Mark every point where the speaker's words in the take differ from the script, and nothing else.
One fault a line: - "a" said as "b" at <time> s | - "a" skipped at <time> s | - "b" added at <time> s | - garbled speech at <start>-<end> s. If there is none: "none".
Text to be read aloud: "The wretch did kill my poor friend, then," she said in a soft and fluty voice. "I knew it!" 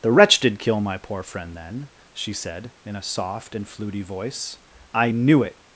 none